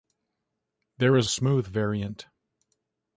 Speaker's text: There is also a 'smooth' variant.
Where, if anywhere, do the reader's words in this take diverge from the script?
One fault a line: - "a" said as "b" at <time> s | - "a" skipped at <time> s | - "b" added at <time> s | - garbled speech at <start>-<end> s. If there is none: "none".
- "also" skipped at 1.3 s